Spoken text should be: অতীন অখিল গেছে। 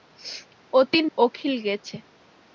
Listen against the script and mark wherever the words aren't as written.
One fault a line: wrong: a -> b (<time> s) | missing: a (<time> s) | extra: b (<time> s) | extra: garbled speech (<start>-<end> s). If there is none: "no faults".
no faults